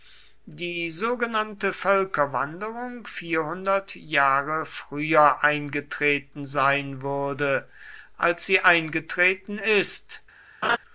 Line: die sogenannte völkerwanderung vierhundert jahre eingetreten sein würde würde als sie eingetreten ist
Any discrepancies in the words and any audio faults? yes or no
yes